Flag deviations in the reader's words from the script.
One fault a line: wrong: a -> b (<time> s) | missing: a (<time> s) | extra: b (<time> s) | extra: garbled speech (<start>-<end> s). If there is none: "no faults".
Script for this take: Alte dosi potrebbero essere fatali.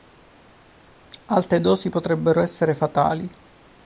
no faults